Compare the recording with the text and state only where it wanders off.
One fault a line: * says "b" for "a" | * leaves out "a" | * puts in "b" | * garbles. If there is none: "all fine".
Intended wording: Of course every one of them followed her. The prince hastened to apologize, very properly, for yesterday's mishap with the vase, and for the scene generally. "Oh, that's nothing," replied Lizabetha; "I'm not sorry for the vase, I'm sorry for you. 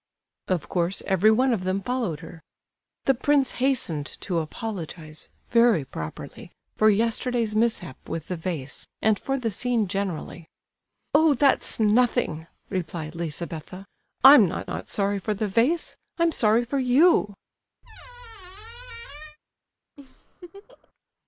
* puts in "not"